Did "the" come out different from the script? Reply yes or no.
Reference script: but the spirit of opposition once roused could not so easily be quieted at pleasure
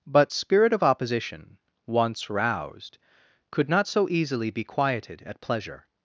yes